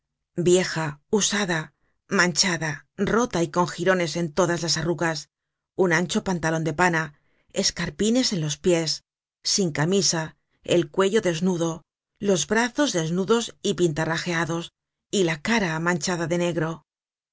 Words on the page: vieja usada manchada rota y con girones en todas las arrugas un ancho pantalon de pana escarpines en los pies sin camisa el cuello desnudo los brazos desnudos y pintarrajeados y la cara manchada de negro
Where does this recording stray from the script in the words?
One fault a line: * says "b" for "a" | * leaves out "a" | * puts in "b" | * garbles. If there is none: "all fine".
all fine